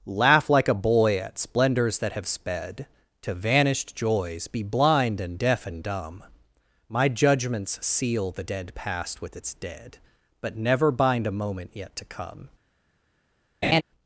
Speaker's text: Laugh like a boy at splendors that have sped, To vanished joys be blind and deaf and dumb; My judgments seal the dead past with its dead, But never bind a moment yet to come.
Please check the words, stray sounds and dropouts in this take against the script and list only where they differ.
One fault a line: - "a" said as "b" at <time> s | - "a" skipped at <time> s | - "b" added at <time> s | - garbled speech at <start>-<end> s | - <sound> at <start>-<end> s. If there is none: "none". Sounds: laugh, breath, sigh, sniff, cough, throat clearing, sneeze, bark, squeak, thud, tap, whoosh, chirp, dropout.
- laugh at 13.6-13.8 s